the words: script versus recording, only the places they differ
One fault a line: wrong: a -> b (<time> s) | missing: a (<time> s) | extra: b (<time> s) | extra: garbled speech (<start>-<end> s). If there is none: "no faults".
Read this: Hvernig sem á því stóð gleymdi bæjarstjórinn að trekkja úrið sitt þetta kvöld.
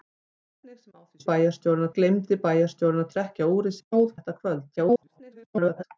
wrong: stóð -> bæjarstjórinn (1.3 s)
wrong: sitt -> stóð (3.8 s)
extra: garbled speech (4.8-5.8 s)